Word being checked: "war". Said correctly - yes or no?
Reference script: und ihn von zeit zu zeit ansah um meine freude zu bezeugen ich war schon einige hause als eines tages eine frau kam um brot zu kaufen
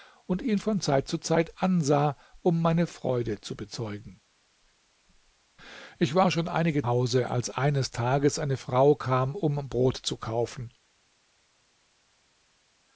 yes